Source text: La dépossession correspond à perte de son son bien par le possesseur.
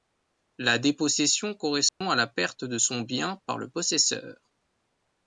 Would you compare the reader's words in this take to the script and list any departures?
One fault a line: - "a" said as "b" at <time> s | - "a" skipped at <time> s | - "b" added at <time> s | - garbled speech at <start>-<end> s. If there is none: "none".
- "la" added at 2.1 s
- "son" skipped at 3.0 s